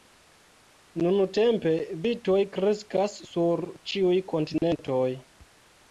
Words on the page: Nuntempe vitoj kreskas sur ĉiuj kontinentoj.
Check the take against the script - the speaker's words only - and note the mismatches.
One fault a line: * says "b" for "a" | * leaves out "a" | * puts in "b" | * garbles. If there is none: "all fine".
all fine